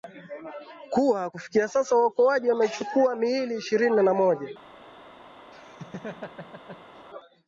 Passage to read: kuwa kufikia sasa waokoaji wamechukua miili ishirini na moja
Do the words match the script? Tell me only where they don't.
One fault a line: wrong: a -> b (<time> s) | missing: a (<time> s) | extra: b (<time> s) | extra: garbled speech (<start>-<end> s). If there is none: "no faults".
no faults